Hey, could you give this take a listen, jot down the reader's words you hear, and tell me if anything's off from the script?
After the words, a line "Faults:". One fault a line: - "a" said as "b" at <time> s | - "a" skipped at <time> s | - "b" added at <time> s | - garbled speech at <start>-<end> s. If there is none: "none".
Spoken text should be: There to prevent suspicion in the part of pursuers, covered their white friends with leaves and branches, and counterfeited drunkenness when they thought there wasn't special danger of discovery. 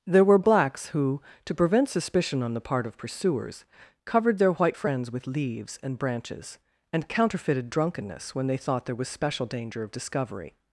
There were blacks who, to prevent suspicion on the part of pursuers, covered their white friends with leaves and branches, and counterfeited drunkenness when they thought there was special danger of discovery.
Faults:
- "were blacks who" added at 0.2 s
- "in" said as "on" at 2.4 s
- "wasn't" said as "was" at 8.9 s